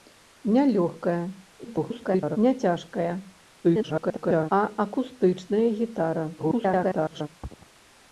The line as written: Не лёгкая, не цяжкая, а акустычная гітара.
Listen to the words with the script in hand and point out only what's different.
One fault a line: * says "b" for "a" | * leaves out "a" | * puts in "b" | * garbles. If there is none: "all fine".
* garbles
* garbles
* garbles